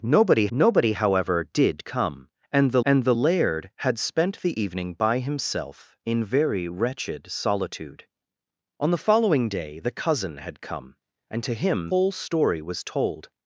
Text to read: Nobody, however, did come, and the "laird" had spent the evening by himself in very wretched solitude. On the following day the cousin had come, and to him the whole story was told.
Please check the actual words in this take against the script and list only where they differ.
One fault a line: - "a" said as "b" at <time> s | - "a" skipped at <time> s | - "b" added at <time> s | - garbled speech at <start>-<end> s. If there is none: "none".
- "nobody" added at 0.5 s
- "and the" added at 2.8 s
- "the" skipped at 11.9 s